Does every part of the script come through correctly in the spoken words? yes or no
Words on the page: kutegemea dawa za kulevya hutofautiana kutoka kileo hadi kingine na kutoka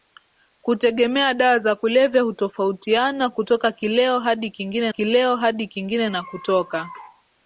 no